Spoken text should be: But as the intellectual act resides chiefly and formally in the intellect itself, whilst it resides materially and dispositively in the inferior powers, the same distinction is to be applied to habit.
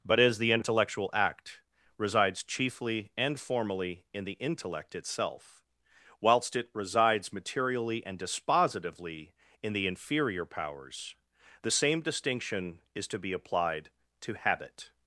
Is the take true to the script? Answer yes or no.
yes